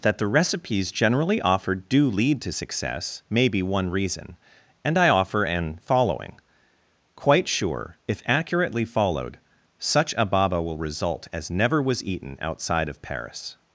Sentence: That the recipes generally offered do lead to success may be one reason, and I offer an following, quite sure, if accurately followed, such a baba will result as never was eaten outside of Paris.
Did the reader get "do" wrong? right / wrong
right